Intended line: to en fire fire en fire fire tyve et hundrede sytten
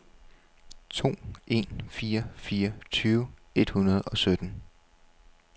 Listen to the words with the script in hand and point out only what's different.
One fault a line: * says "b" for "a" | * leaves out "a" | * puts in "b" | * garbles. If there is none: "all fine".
* leaves out "en fire fire"
* puts in "og"